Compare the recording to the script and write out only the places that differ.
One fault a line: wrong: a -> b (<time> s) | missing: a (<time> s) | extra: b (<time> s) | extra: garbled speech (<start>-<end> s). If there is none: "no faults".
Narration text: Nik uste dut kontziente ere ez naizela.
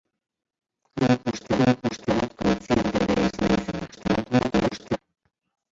extra: nik uste (1.6 s)
extra: garbled speech (3.9-5.0 s)